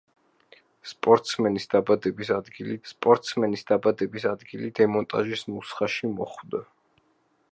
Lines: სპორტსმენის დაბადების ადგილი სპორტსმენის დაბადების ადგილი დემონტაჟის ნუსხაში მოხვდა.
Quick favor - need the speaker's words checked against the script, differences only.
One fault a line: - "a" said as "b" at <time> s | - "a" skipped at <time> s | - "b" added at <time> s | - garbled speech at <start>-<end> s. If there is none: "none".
none